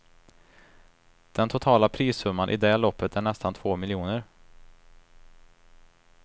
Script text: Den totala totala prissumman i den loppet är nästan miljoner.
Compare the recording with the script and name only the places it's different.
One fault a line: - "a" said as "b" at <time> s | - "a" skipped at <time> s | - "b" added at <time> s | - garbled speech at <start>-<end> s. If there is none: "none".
- "totala" skipped at 1.9 s
- "den" said as "det" at 2.6 s
- "två" added at 3.5 s